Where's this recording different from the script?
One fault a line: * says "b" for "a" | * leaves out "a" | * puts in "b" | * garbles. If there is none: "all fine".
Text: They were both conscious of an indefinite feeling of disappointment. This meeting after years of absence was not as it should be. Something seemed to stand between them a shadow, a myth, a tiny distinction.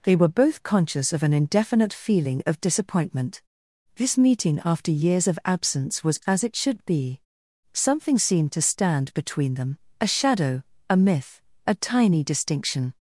* leaves out "not"